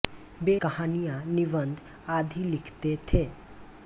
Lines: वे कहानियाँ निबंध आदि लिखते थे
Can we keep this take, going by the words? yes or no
yes